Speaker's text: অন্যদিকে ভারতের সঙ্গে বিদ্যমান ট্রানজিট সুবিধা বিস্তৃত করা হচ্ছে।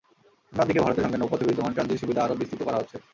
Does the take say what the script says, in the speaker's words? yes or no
no